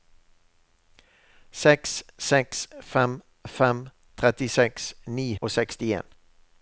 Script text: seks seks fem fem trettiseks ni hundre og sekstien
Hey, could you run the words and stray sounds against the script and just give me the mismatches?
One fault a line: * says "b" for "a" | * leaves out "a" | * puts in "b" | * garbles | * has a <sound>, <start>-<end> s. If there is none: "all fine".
* leaves out "hundre"